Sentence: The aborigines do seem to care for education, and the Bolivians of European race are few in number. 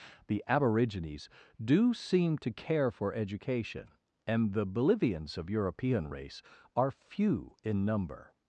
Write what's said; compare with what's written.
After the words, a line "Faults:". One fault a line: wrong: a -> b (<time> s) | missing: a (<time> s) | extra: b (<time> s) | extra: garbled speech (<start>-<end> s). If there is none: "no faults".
The aborigines do seem to care for education, and the Bolivians of European race are few in number.
Faults:
no faults